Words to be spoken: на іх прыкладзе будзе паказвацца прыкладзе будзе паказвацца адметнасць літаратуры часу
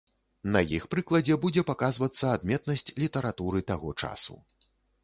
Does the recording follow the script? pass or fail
fail